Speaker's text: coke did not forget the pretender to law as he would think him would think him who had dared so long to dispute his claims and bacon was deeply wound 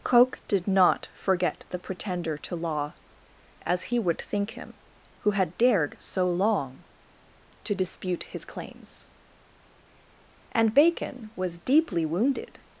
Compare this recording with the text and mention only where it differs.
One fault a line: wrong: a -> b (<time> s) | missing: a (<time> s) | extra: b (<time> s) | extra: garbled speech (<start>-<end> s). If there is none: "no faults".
missing: would think him (4.8 s)
wrong: wound -> wounded (12.1 s)